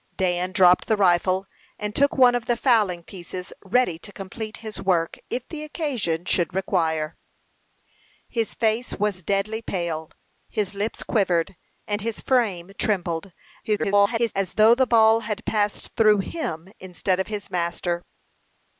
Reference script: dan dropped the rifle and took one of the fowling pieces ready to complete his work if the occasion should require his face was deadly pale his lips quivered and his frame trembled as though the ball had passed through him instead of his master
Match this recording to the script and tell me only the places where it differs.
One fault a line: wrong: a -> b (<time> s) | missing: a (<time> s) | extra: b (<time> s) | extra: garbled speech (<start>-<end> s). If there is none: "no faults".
extra: garbled speech (13.6-14.3 s)